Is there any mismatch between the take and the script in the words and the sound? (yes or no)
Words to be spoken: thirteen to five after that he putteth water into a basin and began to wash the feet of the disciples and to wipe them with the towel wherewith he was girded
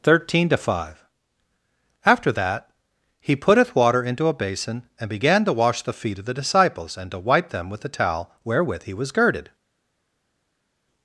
no